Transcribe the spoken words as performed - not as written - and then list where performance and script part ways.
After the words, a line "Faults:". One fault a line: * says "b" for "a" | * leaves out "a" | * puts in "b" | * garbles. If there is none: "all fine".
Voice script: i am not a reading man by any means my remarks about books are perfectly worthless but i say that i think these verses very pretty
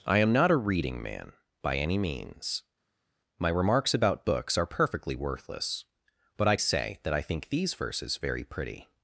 i am not a reading man by any means my remarks about books are perfectly worthless but i say that i think these verses very pretty
Faults:
all fine